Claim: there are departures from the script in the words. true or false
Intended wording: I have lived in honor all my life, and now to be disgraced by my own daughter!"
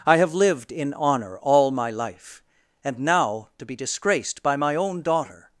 false